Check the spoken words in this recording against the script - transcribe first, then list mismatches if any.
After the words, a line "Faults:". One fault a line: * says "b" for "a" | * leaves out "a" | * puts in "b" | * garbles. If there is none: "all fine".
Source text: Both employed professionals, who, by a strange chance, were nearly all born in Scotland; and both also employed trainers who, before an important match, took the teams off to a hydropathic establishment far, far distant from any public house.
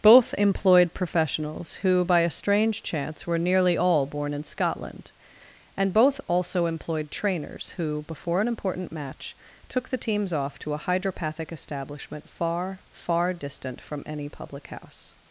Both employed professionals, who, by a strange chance, were nearly all born in Scotland; and both also employed trainers who, before an important match, took the teams off to a hydropathic establishment far, far distant from any public house.
Faults:
all fine